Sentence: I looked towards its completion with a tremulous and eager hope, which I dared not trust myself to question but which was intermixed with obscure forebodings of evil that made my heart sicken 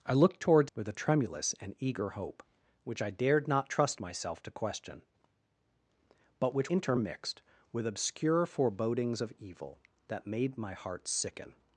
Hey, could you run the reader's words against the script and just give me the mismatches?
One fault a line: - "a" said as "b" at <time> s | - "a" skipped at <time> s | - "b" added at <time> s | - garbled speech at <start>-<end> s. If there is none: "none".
- "its completion" skipped at 0.7 s
- "was" skipped at 6.7 s